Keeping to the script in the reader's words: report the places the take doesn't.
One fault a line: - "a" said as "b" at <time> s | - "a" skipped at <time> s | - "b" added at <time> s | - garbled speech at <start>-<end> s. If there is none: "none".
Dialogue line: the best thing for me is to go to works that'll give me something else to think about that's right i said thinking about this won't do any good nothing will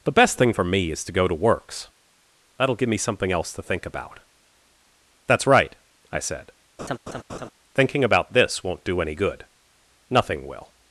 none